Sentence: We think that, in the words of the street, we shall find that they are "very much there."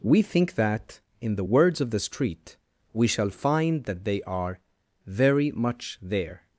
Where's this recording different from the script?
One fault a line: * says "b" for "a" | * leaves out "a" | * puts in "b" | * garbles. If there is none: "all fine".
all fine